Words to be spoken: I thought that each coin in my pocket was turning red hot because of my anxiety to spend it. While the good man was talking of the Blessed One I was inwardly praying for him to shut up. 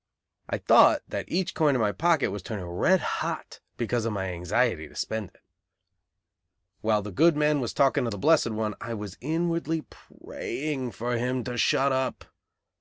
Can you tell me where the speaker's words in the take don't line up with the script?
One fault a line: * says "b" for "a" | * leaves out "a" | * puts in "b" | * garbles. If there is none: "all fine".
all fine